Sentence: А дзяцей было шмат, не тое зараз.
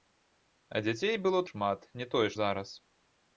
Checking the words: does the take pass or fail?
pass